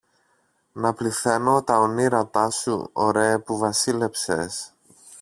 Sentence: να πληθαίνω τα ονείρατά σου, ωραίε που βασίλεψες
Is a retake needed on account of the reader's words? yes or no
no